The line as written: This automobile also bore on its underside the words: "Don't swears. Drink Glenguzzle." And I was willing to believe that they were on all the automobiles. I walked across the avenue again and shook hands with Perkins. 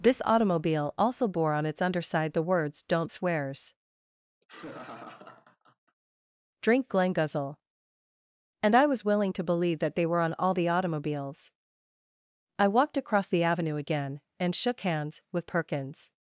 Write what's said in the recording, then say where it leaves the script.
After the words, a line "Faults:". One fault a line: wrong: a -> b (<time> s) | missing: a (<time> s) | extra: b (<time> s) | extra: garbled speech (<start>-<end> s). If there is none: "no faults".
This automobile also bore on its underside the words: "Don't swears. Drink Glenguzzle." And I was willing to believe that they were on all the automobiles. I walked across the avenue again and shook hands with Perkins.
Faults:
no faults